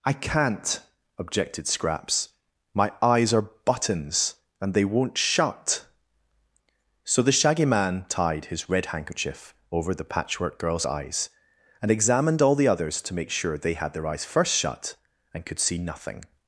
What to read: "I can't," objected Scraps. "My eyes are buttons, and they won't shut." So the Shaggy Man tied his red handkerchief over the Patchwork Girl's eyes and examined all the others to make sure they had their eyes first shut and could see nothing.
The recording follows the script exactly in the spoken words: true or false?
true